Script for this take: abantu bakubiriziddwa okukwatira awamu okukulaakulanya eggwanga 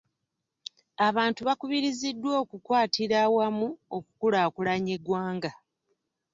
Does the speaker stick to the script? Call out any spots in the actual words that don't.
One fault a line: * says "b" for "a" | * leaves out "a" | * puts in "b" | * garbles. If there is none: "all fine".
all fine